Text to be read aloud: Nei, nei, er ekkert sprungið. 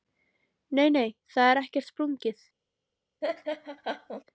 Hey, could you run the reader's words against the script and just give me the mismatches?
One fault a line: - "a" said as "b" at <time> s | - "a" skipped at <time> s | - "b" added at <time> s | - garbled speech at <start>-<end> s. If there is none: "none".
- "það" added at 1.4 s